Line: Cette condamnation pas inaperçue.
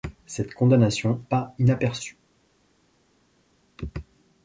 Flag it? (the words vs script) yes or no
no